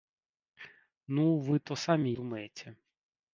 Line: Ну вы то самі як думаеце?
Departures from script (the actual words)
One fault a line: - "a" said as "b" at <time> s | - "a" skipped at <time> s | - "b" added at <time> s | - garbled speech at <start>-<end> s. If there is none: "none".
- "як" skipped at 2.1 s